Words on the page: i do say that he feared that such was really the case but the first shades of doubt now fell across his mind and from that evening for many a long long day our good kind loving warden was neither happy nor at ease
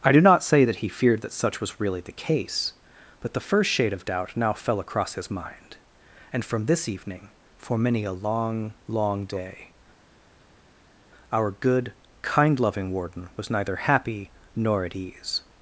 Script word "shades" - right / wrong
wrong